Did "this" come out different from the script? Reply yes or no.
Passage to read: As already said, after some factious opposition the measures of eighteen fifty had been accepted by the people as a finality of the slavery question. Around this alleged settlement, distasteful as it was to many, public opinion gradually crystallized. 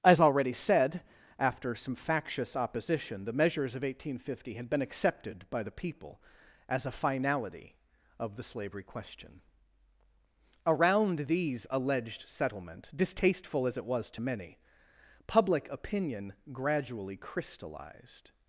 yes